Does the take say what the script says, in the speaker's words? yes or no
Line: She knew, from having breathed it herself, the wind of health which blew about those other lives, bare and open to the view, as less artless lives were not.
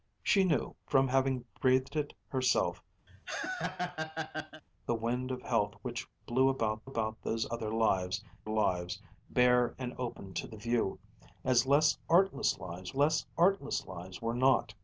no